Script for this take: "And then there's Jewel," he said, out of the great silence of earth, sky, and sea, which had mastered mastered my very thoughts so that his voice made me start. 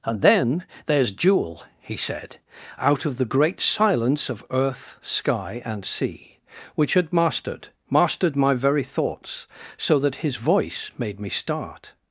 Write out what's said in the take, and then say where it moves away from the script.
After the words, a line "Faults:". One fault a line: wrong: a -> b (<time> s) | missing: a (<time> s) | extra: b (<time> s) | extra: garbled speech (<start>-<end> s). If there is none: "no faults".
"And then there's Jewel," he said, out of the great silence of earth, sky, and sea, which had mastered mastered my very thoughts so that his voice made me start.
Faults:
no faults